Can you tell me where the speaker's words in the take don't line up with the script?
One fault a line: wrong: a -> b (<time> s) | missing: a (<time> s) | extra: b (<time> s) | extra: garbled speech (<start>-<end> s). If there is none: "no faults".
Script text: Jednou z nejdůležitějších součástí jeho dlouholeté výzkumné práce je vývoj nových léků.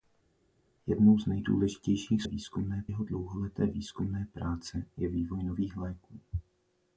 wrong: součástí -> výzkumné (2.2 s)